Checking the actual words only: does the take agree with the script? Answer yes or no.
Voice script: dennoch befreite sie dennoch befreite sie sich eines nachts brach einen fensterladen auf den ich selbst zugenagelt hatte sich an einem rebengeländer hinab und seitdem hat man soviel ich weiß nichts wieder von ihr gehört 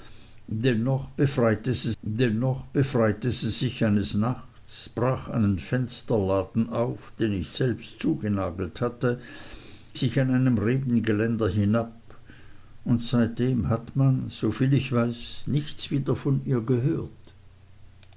yes